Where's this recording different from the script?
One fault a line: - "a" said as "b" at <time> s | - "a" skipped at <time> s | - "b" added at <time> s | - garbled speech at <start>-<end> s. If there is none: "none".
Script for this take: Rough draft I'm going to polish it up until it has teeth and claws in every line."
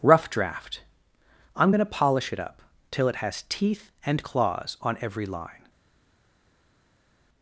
- "until" said as "till" at 2.9 s
- "in" said as "on" at 4.8 s